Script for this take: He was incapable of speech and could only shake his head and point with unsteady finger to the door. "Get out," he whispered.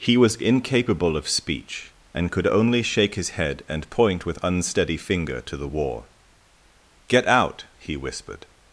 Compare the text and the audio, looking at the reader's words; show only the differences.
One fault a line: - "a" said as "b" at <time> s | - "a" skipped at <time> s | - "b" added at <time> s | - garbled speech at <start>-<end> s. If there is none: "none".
- "door" said as "war" at 5.6 s